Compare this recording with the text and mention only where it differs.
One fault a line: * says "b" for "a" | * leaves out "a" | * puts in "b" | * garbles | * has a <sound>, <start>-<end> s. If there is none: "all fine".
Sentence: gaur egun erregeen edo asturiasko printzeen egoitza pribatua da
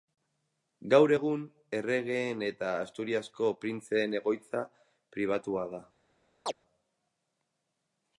* says "eta" for "edo"
* has a chirp, 6.5-6.5 s